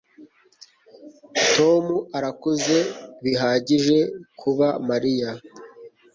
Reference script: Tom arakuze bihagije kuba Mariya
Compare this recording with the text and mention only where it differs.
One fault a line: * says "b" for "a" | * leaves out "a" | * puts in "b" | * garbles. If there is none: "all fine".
all fine